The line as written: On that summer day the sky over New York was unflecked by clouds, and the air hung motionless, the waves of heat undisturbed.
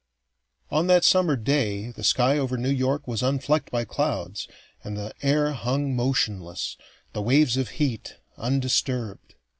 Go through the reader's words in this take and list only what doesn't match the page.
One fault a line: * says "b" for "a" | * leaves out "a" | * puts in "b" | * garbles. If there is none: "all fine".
all fine